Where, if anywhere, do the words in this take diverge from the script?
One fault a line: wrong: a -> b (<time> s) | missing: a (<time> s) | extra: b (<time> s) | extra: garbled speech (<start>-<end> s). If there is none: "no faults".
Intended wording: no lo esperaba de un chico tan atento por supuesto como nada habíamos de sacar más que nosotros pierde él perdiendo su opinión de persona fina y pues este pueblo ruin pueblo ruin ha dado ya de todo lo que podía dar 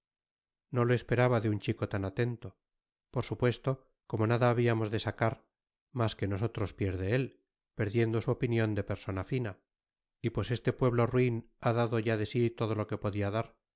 missing: pueblo ruin (11.5 s)
extra: sí (12.3 s)